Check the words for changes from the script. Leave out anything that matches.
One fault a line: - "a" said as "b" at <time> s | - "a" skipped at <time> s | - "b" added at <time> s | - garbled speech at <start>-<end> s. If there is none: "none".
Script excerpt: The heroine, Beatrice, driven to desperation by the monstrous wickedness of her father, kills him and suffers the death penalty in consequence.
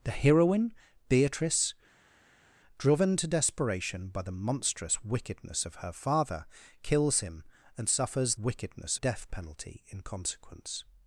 - "the" said as "wickedness" at 8.4 s